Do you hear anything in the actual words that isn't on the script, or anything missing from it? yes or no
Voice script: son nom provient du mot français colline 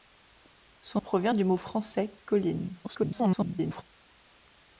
yes